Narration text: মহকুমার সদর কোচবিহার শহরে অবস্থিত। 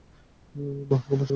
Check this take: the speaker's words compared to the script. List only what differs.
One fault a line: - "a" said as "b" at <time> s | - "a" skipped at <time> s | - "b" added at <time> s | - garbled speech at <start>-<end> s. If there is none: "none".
- "সদর কোচবিহার শহরে" skipped at 1.3 s